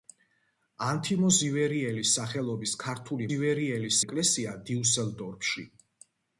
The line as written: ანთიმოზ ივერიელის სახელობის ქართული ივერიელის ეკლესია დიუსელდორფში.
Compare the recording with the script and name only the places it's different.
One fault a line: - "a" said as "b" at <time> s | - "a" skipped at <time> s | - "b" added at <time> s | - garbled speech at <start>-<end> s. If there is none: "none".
none